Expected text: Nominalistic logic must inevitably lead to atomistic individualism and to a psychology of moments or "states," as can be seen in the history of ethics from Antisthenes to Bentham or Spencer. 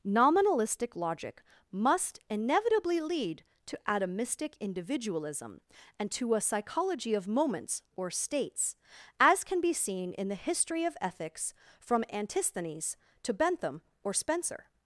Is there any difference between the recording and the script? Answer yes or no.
no